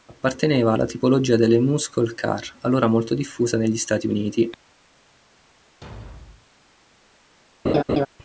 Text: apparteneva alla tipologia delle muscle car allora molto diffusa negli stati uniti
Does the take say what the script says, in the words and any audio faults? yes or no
no